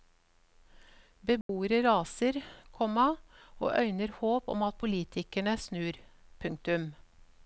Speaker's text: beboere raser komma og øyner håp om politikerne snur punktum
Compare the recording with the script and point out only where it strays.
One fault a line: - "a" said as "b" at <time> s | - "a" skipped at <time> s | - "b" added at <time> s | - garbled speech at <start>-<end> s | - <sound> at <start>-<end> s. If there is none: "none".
- dropout at 1.4-1.5 s
- "at" added at 4.6 s